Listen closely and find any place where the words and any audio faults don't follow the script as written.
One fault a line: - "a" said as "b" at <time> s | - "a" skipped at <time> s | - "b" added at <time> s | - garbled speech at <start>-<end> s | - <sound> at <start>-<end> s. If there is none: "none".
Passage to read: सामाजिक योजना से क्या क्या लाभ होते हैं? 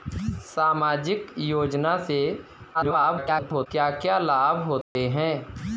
- garbled speech at 2.7-3.7 s
- dropout at 4.8-5.0 s